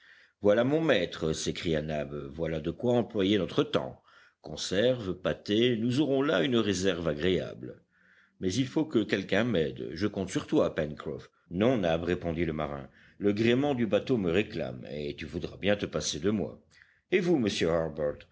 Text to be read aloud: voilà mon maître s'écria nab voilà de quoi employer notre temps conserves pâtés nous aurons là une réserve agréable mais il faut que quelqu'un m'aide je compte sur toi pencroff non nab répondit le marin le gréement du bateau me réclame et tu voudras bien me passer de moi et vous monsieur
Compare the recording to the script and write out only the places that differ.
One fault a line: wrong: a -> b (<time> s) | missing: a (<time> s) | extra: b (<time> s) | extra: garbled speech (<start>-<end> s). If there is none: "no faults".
wrong: me -> te (15.8 s)